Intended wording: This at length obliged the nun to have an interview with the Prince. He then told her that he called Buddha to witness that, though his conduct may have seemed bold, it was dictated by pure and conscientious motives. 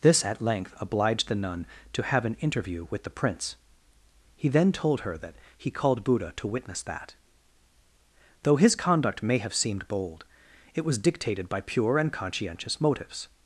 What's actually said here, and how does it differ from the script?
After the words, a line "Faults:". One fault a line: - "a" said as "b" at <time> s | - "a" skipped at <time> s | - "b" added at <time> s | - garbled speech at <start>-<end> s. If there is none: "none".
This at length obliged the nun to have an interview with the Prince. He then told her that he called Buddha to witness that, though his conduct may have seemed bold, it was dictated by pure and conscientious motives.
Faults:
none